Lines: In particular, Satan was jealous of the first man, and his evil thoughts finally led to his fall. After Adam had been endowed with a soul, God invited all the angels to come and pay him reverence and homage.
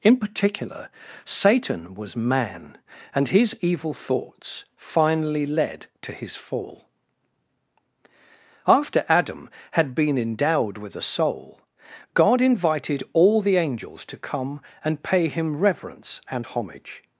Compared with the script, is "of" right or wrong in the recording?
wrong